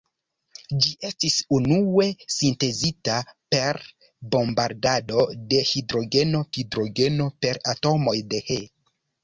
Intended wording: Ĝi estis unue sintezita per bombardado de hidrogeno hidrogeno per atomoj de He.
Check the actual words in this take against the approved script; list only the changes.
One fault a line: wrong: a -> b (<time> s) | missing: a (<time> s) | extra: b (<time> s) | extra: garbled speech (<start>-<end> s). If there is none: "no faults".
no faults